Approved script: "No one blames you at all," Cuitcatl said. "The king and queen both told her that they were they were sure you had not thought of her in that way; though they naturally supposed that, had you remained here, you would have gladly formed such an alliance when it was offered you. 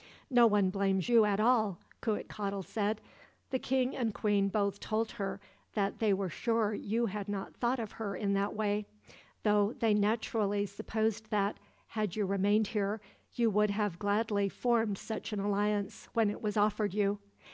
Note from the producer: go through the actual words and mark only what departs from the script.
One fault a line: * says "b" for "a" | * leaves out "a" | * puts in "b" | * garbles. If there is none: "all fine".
* leaves out "they were"